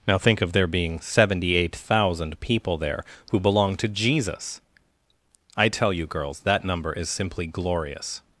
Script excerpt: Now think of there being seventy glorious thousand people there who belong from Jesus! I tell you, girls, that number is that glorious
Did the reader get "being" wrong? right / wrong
right